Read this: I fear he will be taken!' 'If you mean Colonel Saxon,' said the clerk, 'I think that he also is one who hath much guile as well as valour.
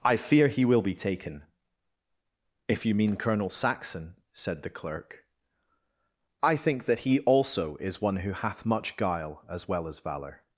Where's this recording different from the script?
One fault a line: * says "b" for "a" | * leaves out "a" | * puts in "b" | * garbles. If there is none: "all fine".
all fine